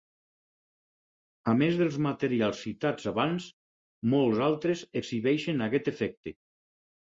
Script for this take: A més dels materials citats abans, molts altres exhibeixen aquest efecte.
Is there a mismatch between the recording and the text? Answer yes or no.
no